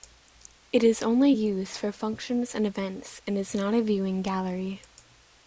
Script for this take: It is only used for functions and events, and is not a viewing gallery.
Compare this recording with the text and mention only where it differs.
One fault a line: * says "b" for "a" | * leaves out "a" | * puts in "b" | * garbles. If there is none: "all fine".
all fine